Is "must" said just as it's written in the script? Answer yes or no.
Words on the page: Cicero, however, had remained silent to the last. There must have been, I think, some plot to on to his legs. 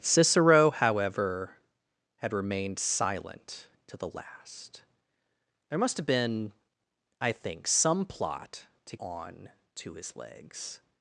yes